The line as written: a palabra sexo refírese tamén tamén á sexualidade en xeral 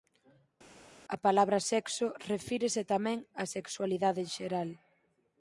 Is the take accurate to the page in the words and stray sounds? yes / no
no